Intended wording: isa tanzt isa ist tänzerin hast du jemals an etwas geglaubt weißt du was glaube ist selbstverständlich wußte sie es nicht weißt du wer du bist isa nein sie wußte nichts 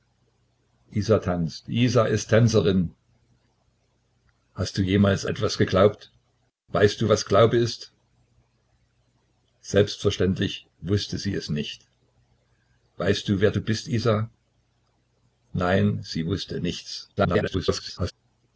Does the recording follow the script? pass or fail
fail